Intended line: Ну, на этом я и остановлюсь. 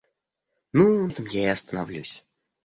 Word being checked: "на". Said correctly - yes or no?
no